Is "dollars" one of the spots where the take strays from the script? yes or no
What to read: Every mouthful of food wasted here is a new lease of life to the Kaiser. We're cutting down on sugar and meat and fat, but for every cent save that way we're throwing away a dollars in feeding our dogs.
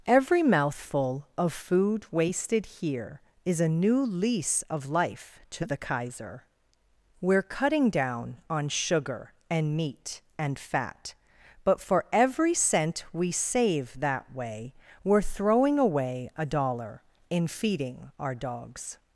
yes